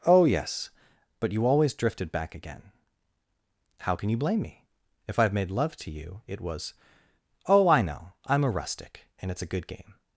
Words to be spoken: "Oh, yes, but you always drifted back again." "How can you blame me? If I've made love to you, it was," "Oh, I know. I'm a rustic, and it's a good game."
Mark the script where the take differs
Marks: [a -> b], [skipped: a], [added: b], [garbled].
"Oh, yes, but you always drifted back again." "How can you blame me? If I've made love to you, it was," "Oh, I know. I'm a rustic, and it's a good game."